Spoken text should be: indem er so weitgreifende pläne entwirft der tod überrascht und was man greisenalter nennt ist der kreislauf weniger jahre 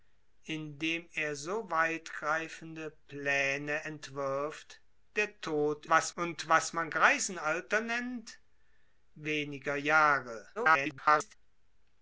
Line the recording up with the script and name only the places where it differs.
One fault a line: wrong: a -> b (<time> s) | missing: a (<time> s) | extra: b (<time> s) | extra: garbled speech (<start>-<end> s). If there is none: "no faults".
wrong: überrascht -> was (5.9 s)
missing: ist der kreislauf (8.4 s)
extra: garbled speech (10.6-11.4 s)